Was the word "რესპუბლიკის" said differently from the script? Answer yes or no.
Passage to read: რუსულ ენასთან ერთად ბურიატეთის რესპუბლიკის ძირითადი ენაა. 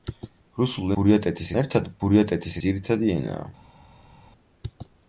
yes